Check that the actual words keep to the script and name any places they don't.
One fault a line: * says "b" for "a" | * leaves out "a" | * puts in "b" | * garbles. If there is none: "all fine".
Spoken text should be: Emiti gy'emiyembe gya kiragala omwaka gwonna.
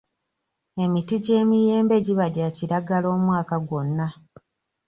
* puts in "giba"